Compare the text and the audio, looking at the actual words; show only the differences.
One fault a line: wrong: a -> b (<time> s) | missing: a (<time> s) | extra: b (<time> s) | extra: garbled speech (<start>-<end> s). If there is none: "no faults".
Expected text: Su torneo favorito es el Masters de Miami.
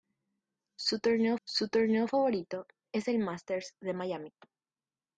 extra: su torneo (1.5 s)